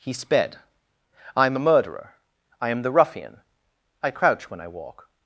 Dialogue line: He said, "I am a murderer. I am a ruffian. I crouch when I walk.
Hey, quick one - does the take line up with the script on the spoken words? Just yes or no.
no